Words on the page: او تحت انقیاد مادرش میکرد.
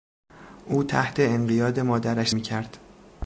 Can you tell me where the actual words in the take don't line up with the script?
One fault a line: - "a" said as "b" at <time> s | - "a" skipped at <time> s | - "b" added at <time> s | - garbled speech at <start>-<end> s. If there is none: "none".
none